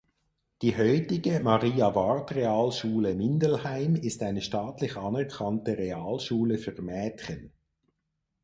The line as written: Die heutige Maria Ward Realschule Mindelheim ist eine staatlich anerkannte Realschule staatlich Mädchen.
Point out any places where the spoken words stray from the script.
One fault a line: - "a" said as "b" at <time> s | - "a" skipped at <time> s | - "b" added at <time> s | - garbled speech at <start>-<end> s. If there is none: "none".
- "staatlich" said as "für" at 6.6 s